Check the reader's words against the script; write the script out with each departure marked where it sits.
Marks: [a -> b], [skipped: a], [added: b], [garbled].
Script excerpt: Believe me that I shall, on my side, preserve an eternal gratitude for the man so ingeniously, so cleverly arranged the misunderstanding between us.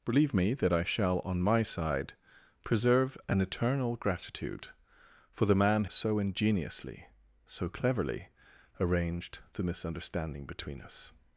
Believe me that I shall, on my side, preserve an eternal gratitude for the man so ingeniously, so cleverly arranged the misunderstanding between us.